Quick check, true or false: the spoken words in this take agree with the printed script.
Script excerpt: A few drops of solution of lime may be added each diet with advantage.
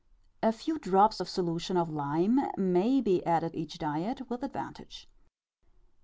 true